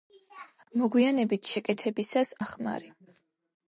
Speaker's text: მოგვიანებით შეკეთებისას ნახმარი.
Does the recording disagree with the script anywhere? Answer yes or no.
no